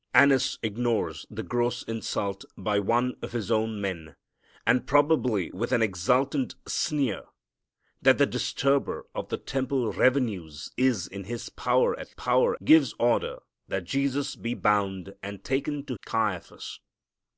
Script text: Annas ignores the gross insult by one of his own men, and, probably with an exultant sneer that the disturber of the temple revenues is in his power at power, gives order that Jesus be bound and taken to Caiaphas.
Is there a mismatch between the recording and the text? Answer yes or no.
no